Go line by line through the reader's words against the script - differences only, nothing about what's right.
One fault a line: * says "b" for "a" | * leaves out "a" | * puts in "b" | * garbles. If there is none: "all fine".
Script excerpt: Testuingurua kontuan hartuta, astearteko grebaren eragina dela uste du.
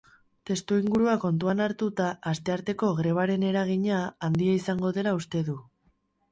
* puts in "handia izango"